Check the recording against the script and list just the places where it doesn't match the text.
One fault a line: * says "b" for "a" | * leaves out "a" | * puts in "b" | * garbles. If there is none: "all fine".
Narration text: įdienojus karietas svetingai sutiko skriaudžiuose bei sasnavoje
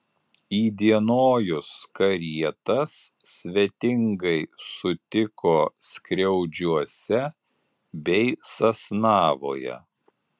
all fine